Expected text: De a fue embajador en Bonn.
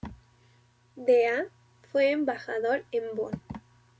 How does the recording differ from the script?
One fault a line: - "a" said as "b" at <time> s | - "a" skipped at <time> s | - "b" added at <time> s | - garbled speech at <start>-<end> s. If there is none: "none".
none